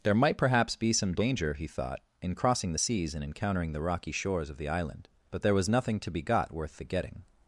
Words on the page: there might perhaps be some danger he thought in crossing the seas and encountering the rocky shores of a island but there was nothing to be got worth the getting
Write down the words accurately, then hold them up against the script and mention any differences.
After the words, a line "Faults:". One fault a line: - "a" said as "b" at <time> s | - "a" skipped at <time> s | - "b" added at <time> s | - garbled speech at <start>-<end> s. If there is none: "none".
there might perhaps be some danger he thought in crossing the seas and encountering the rocky shores of the island but there was nothing to be got worth the getting
Faults:
- "a" said as "the" at 4.6 s